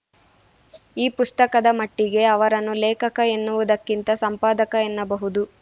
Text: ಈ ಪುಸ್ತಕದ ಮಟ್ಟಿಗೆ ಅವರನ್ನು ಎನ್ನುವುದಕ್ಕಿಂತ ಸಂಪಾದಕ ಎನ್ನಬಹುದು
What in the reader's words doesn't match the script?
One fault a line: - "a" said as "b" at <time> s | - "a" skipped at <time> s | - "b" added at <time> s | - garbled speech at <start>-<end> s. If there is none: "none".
- "ಲೇಖಕ" added at 2.8 s